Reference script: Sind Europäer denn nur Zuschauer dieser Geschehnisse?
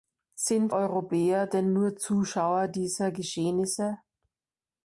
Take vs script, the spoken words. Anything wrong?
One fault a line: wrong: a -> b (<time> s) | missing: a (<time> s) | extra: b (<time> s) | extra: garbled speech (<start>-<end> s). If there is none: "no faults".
no faults